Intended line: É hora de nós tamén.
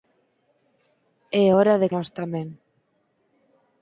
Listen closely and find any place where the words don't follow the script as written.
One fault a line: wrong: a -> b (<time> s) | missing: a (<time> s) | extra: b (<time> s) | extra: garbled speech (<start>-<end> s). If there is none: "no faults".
no faults